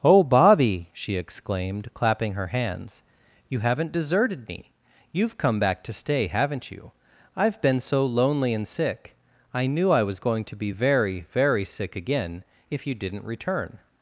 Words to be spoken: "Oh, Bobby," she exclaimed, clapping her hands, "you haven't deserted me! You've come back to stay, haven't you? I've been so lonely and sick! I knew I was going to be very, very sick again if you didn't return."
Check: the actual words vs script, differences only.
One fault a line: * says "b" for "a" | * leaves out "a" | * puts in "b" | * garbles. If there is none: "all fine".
all fine